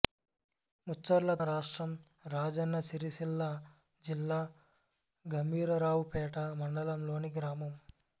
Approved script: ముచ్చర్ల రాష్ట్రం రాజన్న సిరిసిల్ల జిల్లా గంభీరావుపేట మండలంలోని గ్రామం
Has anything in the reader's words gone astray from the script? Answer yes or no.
no